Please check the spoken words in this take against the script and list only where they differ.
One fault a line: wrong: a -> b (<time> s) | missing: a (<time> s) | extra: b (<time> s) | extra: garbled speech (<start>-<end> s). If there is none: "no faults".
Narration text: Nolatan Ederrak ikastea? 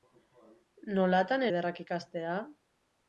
no faults